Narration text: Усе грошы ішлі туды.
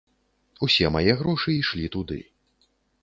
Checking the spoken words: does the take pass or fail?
fail